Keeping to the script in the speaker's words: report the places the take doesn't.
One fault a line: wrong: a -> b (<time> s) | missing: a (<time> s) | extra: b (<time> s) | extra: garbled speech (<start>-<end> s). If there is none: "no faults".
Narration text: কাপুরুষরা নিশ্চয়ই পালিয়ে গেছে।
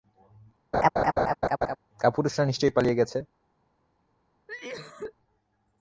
no faults